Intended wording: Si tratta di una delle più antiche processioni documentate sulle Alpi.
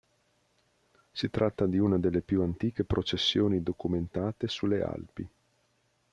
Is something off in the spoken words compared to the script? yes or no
no